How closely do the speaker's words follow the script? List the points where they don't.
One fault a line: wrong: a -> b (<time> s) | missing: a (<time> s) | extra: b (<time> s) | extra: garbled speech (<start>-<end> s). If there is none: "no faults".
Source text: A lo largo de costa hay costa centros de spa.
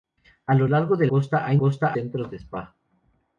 no faults